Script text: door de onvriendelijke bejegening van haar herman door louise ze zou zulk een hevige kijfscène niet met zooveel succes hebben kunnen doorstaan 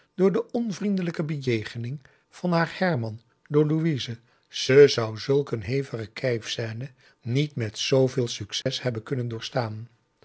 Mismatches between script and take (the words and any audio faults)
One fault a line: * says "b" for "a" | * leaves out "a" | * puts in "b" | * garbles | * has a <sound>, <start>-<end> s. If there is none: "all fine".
* has a dropout, 8.6-8.7 s